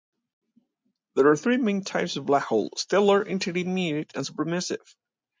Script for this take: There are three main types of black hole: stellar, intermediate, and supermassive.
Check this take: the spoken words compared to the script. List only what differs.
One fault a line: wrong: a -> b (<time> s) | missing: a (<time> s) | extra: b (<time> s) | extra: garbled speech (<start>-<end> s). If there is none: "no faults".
no faults